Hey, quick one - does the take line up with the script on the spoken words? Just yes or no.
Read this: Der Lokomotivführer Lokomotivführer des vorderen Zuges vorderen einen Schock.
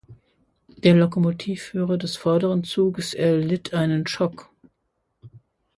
no